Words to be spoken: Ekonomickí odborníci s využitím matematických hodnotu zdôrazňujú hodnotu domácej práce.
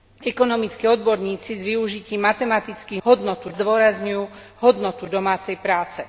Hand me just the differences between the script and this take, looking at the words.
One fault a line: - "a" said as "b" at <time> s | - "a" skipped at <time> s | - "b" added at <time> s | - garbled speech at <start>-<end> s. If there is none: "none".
none